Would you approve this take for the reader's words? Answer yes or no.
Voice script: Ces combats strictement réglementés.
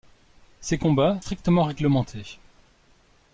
yes